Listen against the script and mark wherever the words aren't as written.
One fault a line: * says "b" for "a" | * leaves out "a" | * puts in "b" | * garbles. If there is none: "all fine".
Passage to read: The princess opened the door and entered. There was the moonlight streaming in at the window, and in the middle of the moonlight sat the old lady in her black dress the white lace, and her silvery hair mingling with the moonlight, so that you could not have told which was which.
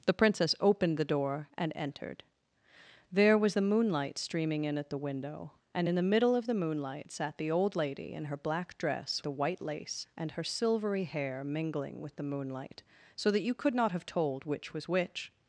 all fine